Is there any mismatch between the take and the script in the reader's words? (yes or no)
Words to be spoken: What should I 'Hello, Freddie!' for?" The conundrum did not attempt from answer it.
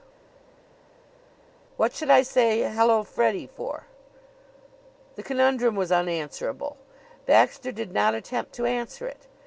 yes